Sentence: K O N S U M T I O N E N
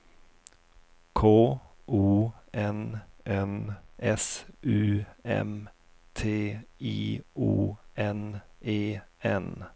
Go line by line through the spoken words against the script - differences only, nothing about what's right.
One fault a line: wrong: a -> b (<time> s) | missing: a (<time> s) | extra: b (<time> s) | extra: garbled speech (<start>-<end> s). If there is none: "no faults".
extra: N (3.3 s)